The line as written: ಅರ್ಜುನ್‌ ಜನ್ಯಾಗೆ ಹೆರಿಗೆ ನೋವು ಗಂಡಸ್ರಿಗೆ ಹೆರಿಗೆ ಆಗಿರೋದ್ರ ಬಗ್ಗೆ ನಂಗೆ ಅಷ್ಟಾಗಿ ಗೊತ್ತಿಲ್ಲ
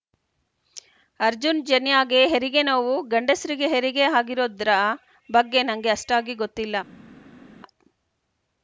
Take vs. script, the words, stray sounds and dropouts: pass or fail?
pass